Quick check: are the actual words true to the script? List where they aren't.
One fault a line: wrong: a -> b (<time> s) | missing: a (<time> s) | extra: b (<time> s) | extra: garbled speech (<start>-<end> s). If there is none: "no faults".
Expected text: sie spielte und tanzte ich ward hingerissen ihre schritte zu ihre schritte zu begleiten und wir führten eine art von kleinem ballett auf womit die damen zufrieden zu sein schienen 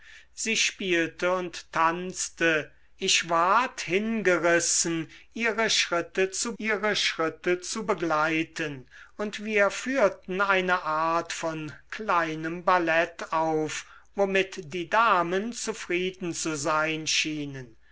no faults